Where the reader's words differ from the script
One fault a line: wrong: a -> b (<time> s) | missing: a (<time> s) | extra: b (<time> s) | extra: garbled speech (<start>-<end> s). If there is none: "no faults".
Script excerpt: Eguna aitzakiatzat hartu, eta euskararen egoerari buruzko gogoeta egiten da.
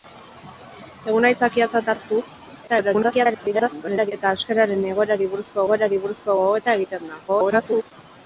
extra: garbled speech (2.7-4.1 s)
extra: egoerari buruzko (5.7 s)
extra: garbled speech (7.3-7.9 s)